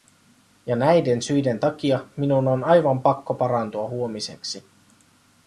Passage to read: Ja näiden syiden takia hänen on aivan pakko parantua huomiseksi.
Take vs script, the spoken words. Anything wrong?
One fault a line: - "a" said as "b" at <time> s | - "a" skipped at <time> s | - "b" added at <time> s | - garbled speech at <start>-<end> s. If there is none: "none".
- "hänen" said as "minun" at 2.2 s